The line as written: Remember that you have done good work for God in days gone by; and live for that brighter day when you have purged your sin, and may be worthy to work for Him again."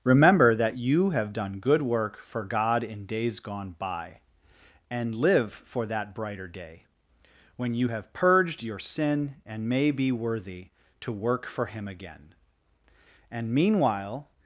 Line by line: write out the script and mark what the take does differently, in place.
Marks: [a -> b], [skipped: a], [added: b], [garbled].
Remember that you have done good work for God in days gone by; and live for that brighter day when you have purged your sin, and may be worthy to work for Him again." [added: And meanwhile]